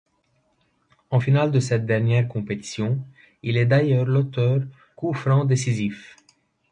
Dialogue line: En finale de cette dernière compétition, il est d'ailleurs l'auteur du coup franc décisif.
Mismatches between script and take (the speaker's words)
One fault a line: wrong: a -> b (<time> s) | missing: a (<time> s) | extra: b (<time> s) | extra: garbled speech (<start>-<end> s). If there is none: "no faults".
missing: du (4.6 s)